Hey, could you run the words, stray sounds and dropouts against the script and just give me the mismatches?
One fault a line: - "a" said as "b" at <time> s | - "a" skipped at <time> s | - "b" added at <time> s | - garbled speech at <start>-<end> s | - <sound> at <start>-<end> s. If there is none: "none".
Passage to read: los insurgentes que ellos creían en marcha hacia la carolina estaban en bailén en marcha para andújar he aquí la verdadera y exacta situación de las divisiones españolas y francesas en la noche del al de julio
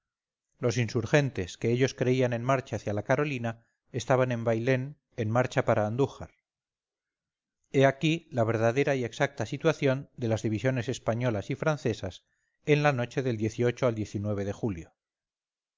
none